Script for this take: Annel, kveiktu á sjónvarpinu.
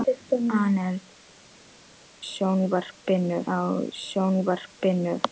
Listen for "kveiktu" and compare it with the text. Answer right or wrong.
wrong